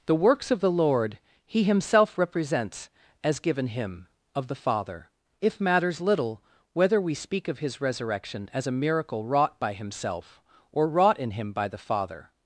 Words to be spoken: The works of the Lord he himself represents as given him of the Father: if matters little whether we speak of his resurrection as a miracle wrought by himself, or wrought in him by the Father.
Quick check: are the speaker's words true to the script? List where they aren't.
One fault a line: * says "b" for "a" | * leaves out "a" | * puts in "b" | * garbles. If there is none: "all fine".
all fine